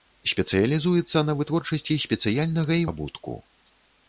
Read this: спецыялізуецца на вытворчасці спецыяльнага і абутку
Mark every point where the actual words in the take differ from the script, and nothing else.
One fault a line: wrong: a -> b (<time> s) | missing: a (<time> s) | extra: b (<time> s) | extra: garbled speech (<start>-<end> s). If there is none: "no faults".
no faults